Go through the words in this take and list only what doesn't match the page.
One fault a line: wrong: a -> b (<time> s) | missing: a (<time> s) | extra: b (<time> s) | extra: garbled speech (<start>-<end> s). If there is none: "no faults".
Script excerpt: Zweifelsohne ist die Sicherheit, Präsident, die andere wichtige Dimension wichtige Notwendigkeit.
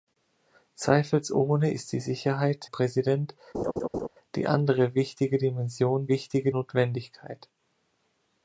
no faults